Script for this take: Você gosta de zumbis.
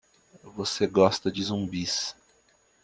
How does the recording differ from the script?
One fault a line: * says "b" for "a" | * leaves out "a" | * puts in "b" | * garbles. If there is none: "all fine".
all fine